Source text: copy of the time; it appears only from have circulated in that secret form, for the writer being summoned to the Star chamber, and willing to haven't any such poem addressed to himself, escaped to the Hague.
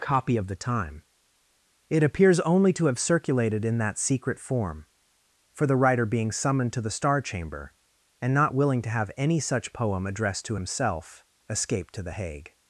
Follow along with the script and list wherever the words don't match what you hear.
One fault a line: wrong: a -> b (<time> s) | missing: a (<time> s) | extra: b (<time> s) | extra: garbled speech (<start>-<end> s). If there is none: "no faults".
wrong: from -> to (2.7 s)
extra: not (8.3 s)
wrong: haven't -> have (8.9 s)